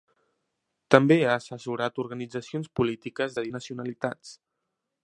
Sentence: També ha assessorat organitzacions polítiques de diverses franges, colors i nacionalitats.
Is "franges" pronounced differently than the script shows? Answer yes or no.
yes